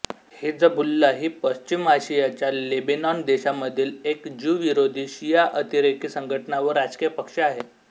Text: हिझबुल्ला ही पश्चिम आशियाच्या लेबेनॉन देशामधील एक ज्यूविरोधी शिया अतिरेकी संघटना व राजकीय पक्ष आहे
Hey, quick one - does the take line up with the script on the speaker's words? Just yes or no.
yes